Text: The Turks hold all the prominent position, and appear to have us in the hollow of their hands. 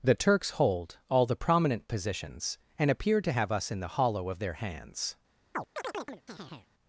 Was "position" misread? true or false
true